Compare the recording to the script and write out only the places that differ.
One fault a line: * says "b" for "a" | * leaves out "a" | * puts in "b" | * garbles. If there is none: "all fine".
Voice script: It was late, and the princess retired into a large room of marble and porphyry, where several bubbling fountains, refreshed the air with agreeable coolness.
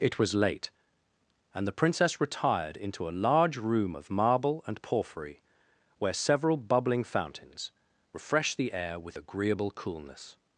all fine